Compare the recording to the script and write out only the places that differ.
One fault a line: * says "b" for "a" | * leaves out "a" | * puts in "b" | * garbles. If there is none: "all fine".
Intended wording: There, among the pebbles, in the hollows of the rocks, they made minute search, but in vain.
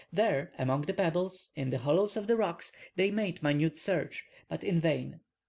all fine